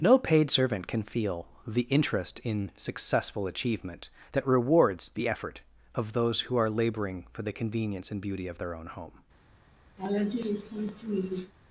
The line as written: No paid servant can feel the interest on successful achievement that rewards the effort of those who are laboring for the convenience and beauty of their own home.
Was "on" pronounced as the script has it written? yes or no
no